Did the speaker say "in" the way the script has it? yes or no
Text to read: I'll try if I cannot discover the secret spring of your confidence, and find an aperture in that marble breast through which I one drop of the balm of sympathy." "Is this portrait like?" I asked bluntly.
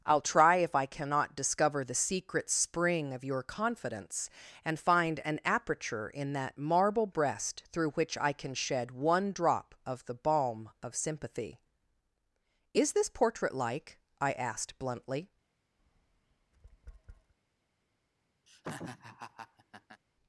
yes